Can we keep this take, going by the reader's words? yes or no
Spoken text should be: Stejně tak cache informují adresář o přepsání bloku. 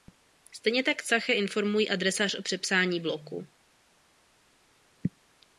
yes